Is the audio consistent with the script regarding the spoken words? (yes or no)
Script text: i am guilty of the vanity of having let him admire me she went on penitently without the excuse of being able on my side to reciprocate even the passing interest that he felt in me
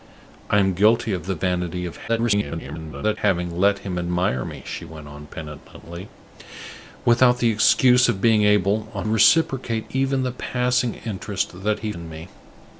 no